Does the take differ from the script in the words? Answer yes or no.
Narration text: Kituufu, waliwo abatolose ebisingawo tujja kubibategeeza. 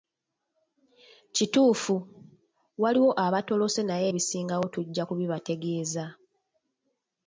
yes